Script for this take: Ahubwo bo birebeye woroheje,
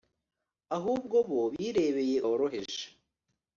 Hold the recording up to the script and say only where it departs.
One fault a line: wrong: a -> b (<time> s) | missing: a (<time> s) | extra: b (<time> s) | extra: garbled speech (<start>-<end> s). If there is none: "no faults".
no faults